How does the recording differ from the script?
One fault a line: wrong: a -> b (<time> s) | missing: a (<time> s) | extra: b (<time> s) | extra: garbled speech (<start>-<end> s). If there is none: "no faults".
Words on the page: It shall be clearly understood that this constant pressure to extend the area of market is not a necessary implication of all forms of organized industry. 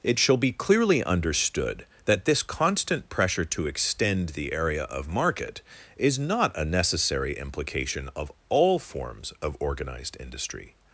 no faults